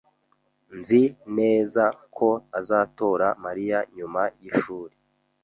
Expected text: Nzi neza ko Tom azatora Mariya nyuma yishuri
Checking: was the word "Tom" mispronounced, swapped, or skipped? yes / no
yes